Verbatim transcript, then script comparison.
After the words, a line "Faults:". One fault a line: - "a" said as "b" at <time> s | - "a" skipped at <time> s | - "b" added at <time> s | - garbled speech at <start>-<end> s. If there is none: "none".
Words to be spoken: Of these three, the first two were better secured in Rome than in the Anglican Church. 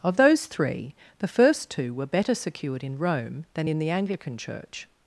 Of those three, the first two were better secured in Rome than in the Anglican Church.
Faults:
- "these" said as "those" at 0.2 s